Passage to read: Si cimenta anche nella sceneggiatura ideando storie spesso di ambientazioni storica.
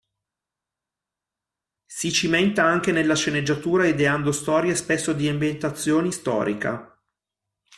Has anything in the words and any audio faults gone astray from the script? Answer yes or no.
no